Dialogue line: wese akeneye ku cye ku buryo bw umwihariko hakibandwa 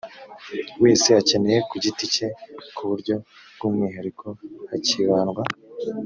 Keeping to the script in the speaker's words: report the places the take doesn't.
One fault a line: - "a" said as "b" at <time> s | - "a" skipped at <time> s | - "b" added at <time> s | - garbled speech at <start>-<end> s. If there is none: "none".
- "giti" added at 1.8 s